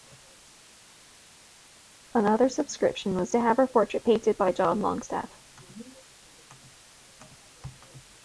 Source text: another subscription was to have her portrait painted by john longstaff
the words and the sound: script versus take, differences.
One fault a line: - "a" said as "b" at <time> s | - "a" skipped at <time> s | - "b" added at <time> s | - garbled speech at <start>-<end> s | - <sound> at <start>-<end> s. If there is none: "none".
none